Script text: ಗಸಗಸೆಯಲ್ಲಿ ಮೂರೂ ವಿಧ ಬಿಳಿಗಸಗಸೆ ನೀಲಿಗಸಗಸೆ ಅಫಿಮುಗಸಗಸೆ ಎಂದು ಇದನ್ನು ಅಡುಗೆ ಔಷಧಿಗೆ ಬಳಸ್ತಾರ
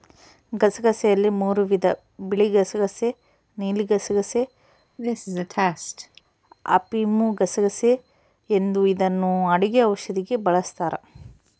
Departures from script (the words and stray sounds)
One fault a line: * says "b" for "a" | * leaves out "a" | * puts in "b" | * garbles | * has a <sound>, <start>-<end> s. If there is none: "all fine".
* has a cough, 5.0-6.2 s